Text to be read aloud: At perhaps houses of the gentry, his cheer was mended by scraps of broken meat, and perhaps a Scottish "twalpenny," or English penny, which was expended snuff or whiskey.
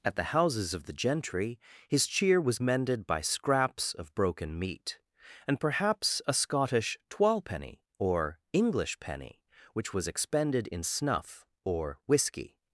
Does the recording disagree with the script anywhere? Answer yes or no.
yes